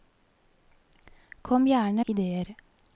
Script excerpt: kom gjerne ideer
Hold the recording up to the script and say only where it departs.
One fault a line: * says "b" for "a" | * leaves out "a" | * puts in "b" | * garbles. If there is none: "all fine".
all fine